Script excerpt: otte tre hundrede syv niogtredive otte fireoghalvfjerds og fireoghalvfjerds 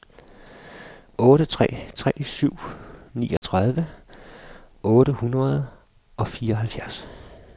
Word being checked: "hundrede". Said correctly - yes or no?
no